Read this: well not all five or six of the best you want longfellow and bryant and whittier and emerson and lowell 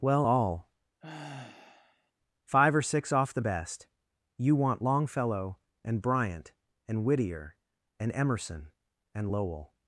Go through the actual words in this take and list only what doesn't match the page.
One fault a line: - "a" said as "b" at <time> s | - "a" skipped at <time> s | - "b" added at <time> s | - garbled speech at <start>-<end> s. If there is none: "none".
- "not" skipped at 0.2 s
- "of" said as "off" at 3.1 s